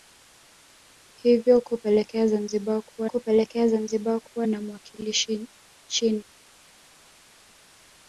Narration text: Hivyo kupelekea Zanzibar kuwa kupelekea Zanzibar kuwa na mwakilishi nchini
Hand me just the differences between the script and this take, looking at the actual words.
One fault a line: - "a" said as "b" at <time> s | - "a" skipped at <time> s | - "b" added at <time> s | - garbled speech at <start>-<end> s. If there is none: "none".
none